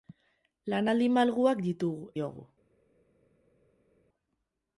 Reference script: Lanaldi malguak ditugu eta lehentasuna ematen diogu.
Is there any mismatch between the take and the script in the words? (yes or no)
yes